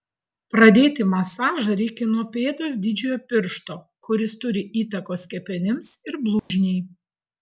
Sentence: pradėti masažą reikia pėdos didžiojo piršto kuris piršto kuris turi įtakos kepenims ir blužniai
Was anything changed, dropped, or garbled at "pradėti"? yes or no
no